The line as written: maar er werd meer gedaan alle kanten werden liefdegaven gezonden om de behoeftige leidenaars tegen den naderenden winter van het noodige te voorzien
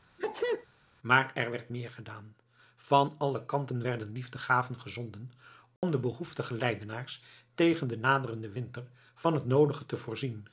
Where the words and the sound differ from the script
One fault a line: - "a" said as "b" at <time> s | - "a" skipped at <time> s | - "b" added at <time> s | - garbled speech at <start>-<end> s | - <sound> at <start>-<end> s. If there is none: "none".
- sneeze at 0.2-0.7 s
- "van" added at 2.8 s
- dropout at 5.8-5.8 s